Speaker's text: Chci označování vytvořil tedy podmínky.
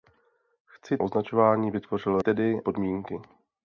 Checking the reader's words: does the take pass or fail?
pass